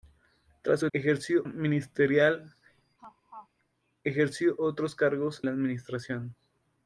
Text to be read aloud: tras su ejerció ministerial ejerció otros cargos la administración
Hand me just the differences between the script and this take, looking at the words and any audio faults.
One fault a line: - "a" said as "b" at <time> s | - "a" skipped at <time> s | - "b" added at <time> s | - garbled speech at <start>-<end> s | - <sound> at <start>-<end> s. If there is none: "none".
- laugh at 3.0-3.5 s